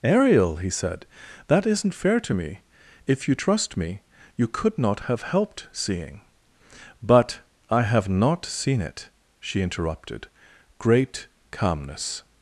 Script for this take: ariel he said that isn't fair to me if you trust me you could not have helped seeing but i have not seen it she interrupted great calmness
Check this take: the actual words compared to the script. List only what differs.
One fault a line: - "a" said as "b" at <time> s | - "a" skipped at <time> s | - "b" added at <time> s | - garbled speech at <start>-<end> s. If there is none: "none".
none